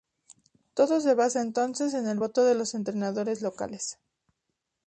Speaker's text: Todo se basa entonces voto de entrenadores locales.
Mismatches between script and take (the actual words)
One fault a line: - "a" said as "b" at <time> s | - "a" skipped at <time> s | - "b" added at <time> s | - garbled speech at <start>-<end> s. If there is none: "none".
- "en el" added at 1.9 s
- "los" added at 2.5 s